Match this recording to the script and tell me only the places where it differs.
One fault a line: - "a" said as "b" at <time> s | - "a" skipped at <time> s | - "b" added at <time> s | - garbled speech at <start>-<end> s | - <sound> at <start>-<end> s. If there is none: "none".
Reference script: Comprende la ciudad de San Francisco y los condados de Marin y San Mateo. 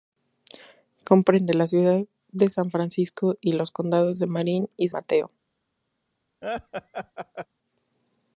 - "San" skipped at 4.9 s
- laugh at 6.4-7.5 s